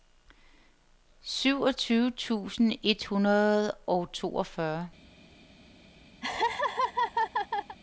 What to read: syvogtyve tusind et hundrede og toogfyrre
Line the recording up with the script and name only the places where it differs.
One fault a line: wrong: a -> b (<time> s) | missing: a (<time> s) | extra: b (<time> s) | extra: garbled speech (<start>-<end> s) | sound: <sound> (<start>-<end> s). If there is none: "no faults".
sound: laugh (6.2-7.8 s)